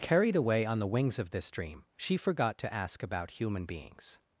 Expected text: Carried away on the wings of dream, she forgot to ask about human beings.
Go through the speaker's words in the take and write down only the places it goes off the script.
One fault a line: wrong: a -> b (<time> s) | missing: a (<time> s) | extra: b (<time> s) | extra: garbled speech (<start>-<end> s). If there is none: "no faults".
extra: this (1.3 s)